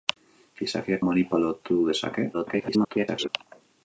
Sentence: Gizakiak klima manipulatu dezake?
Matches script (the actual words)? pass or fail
fail